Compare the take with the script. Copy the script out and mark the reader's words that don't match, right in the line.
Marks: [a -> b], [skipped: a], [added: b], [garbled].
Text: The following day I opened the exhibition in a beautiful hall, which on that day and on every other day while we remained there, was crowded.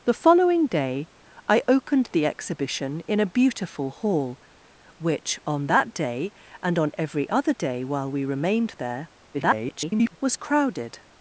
The following day I opened the exhibition in a beautiful hall, which on that day and on every other day while we remained there, [garbled] was crowded.